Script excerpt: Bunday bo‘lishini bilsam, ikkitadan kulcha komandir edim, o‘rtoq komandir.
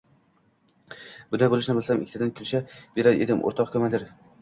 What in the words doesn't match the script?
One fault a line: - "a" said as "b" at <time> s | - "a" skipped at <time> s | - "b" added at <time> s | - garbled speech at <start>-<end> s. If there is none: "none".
- "komandir" said as "berar" at 3.0 s